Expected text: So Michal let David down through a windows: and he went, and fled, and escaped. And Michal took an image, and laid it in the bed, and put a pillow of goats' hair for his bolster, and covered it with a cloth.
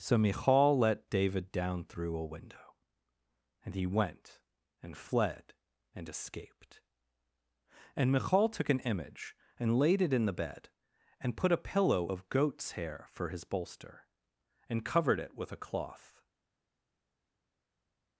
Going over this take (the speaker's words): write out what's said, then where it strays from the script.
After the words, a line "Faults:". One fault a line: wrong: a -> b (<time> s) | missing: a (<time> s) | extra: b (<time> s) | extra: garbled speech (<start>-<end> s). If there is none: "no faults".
So Michal let David down through a window: and he went, and fled, and escaped. And Michal took an image, and laid it in the bed, and put a pillow of goats' hair for his bolster, and covered it with a cloth.
Faults:
wrong: windows -> window (2.2 s)